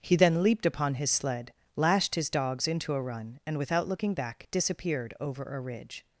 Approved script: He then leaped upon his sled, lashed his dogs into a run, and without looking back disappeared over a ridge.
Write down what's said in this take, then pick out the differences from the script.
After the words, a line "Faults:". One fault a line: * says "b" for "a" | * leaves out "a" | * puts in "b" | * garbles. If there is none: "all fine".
He then leaped upon his sled, lashed his dogs into a run, and without looking back disappeared over a ridge.
Faults:
all fine